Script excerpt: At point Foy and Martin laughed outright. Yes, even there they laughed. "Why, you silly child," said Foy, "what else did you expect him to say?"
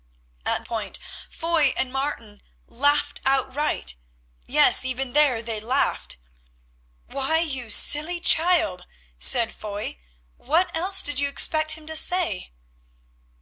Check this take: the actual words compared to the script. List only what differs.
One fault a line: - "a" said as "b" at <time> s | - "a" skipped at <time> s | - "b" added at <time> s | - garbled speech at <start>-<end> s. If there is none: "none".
none